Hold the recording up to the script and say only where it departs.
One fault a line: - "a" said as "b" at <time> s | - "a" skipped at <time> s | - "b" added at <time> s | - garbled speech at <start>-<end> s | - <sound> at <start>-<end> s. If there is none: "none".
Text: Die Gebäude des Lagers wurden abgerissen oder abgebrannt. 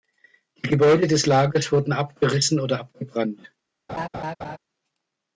- laugh at 3.9-4.6 s